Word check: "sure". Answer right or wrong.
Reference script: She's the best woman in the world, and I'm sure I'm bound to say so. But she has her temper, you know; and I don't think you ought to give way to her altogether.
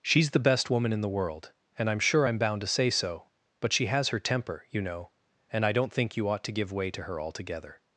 right